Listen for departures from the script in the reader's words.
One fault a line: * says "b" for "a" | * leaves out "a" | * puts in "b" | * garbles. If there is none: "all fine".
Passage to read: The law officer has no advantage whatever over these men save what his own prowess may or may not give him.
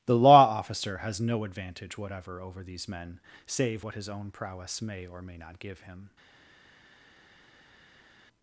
all fine